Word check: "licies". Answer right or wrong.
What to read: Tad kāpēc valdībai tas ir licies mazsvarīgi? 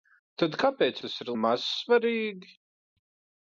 wrong